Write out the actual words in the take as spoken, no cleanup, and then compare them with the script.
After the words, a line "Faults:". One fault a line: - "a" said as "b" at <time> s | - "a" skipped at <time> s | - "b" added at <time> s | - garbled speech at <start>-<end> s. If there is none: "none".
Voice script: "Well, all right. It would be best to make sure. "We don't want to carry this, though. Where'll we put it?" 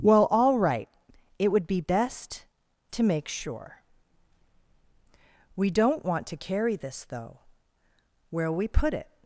"Well, all right. It would be best to make sure. "We don't want to carry this, though. Where'll we put it?"
Faults:
none